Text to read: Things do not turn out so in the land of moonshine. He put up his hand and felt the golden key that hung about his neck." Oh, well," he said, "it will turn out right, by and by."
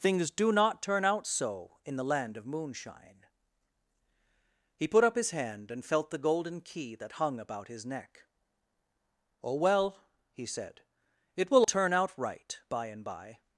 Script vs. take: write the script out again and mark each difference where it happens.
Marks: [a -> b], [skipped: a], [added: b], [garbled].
Things do not turn out so in the land of moonshine. He put up his hand and felt the golden key that hung about his neck." Oh, well," he said, "it will turn out right, by and by."